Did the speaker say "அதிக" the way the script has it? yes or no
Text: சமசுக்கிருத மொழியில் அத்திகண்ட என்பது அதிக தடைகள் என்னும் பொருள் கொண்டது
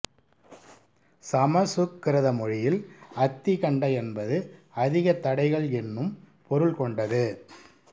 yes